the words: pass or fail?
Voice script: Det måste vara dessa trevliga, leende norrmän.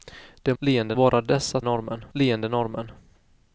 fail